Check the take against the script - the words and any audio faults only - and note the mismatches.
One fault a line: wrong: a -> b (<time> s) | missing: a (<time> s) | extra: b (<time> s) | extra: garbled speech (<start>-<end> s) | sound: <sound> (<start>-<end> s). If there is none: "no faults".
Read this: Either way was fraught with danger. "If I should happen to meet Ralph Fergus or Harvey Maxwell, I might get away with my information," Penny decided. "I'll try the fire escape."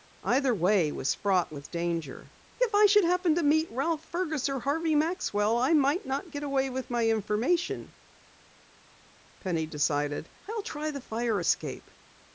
extra: not (6.1 s)